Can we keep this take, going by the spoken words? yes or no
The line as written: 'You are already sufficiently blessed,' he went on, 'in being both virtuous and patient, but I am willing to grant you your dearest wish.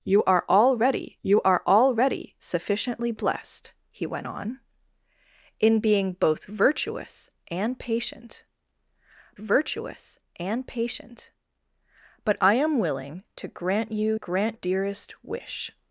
no